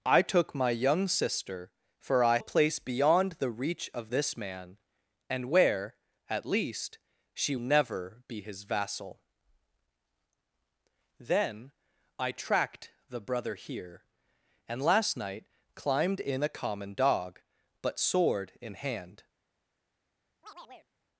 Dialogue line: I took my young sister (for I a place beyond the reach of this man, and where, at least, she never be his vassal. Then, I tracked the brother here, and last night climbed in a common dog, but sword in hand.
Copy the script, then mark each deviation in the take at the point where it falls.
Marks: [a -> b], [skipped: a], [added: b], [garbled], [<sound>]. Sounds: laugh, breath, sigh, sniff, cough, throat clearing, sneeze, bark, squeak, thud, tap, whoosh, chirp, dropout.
I took my young sister (for I a place beyond the reach of this man, and where, at least, she never be his vassal. Then, I tracked the brother here, and last night climbed in a common dog, but sword in hand. [chirp]